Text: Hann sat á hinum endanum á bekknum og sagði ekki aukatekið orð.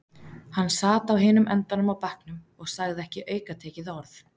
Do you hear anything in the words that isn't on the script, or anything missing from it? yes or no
no